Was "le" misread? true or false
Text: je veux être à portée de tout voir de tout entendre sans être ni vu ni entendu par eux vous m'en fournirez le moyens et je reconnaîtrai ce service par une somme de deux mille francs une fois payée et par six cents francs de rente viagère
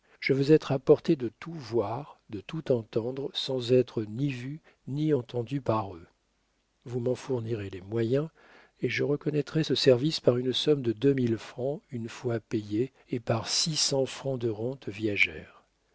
true